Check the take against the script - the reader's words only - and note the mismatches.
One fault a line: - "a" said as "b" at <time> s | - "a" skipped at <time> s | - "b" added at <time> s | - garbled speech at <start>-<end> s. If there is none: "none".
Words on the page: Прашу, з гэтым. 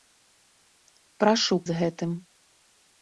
none